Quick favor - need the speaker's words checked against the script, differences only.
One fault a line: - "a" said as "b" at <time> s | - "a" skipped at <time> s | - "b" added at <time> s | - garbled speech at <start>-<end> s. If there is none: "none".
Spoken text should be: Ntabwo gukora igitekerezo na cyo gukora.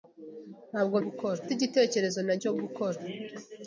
none